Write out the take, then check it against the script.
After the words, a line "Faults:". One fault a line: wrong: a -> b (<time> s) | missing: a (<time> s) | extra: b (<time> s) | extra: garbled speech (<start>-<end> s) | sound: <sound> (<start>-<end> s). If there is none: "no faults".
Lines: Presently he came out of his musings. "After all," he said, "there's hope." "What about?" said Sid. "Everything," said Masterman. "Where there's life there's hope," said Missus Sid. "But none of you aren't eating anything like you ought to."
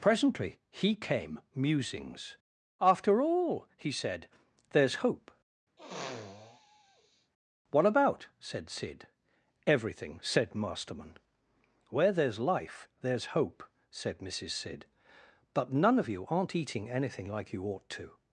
Presently he came musings. "After all," he said, "there's hope." "What about?" said Sid. "Everything," said Masterman. "Where there's life there's hope," said Missus Sid. "But none of you aren't eating anything like you ought to."
Faults:
missing: out of his (1.4 s)
sound: sniff (5.8-7.3 s)